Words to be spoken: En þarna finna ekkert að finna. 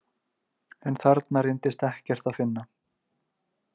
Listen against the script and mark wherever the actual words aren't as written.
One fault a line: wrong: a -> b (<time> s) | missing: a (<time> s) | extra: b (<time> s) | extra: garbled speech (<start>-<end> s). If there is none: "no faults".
wrong: finna -> reyndist (1.5 s)